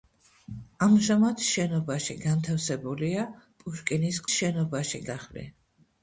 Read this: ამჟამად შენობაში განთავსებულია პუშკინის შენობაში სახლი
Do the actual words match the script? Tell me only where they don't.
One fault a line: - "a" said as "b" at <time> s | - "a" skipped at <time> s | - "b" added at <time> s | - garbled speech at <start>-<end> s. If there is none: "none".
none